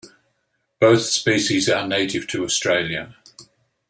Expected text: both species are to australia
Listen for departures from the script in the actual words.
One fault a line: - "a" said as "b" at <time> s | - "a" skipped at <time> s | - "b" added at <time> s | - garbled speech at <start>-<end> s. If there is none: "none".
- "native" added at 1.9 s